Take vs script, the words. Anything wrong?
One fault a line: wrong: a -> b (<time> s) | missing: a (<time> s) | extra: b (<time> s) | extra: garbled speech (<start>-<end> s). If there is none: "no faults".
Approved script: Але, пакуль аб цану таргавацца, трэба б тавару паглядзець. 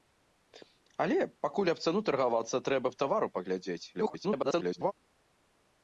extra: garbled speech (3.9-4.9 s)